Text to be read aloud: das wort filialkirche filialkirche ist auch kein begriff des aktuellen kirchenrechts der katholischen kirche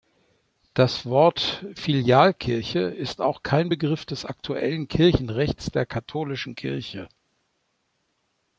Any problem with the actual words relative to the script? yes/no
yes